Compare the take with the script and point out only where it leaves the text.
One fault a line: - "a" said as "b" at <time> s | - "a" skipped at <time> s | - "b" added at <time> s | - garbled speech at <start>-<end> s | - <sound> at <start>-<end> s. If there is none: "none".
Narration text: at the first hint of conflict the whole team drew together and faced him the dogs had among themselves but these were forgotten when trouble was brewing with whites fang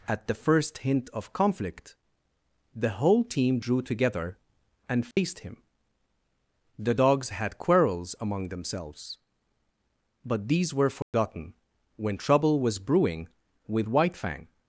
- dropout at 5.1-5.2 s
- "quarrels" added at 7.6 s
- dropout at 11.0-11.1 s
- "whites" said as "white" at 13.9 s